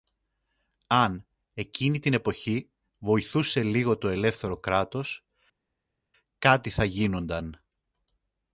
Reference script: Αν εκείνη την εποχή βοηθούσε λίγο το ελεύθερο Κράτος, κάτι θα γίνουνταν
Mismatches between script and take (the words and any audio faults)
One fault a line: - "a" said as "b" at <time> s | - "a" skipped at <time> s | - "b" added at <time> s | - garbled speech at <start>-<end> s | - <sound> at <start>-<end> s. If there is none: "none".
none